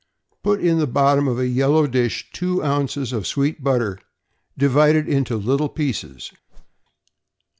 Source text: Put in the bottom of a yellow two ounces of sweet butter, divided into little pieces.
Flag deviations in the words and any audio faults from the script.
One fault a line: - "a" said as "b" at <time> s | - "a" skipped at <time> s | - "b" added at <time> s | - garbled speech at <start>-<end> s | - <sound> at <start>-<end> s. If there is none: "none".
- "dish" added at 1.9 s
- whoosh at 6.5-6.8 s